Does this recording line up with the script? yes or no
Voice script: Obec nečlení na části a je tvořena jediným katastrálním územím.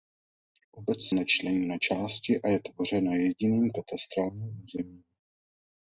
yes